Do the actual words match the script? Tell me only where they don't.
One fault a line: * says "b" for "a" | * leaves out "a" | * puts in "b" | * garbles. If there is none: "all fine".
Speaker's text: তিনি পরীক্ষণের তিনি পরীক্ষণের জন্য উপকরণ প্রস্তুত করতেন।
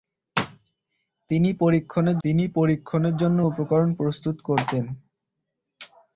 all fine